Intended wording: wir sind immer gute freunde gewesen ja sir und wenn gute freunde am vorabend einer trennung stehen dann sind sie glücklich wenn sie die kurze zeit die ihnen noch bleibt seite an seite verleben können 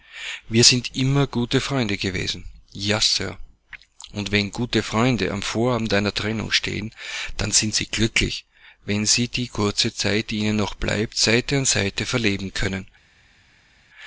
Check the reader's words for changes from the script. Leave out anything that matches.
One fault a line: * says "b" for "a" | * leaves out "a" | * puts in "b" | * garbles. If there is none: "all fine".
all fine